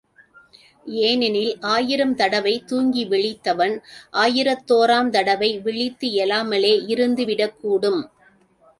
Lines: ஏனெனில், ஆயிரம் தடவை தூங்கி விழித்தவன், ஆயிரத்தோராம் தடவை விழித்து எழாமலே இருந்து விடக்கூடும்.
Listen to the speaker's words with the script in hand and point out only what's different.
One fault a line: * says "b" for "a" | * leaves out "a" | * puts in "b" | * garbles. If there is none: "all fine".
all fine